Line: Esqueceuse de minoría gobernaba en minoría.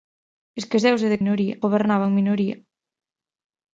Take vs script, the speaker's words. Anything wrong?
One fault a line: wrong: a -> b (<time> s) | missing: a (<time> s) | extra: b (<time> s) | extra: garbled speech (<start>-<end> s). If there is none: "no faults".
no faults